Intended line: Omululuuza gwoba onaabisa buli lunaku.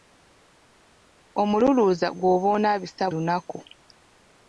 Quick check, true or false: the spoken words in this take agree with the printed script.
false